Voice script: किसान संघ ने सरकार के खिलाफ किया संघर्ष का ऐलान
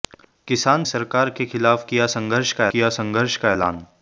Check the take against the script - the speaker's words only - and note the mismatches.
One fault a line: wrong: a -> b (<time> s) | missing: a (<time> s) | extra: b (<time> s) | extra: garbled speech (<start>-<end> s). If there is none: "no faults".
missing: संघ ने (0.8 s)
extra: किया संघर्ष का (2.7 s)